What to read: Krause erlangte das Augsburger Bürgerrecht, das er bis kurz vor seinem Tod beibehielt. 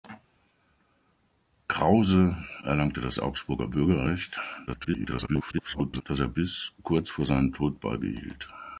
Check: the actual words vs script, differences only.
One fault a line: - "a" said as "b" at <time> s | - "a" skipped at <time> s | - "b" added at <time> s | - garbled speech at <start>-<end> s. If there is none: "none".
- garbled speech at 4.7-6.0 s